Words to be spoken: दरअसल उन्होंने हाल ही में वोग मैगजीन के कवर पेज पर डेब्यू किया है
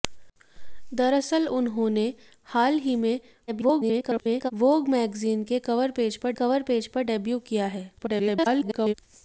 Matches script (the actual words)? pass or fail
fail